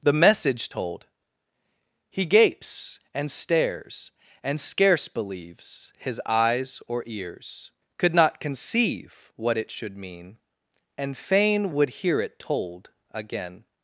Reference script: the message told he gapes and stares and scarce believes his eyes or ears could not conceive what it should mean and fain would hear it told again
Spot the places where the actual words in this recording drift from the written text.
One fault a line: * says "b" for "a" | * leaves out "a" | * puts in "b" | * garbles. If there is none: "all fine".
all fine